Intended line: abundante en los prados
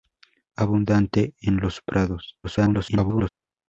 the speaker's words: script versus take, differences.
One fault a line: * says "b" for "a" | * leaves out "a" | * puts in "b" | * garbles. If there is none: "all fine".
* garbles